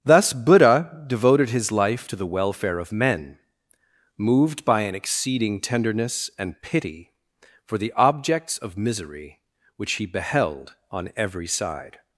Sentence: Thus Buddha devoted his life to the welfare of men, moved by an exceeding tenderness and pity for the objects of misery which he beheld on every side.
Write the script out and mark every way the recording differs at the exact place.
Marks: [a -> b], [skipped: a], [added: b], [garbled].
Thus Buddha devoted his life to the welfare of men, moved by an exceeding tenderness and pity for the objects of misery which he beheld on every side.